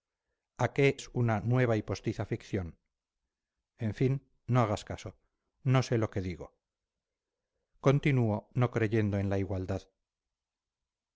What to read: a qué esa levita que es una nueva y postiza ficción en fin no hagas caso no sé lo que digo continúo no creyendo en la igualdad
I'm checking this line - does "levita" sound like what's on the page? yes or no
no